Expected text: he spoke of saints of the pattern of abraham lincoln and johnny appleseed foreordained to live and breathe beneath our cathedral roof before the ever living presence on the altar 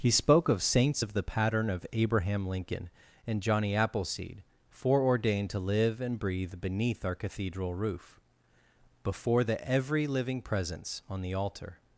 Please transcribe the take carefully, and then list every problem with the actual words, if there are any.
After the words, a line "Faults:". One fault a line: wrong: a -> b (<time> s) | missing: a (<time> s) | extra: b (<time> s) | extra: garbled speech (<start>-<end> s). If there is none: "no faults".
he spoke of saints of the pattern of abraham lincoln and johnny appleseed foreordained to live and breathe beneath our cathedral roof before the every living presence on the altar
Faults:
wrong: ever -> every (9.7 s)